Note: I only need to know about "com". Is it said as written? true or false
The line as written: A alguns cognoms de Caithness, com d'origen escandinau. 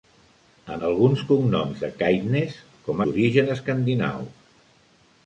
true